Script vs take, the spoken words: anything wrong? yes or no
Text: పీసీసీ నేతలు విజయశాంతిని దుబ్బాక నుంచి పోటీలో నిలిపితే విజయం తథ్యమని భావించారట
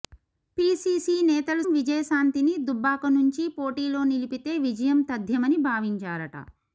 no